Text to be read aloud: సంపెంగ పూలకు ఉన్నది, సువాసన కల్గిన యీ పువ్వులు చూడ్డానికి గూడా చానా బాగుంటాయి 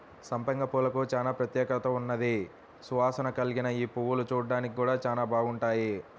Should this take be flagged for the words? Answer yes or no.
yes